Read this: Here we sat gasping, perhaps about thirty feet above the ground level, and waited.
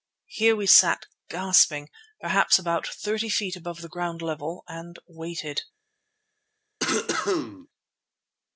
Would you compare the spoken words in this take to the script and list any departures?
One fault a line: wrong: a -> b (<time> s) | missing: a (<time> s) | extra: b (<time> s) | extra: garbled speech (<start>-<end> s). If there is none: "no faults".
no faults